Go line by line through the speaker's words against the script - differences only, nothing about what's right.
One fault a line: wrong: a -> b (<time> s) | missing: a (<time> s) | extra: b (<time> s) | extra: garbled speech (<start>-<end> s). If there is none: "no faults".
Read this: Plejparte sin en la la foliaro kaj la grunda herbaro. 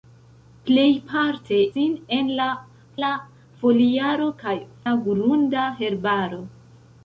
no faults